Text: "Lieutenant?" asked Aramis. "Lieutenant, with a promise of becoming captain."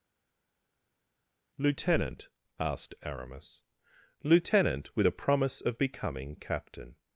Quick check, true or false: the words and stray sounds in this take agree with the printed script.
true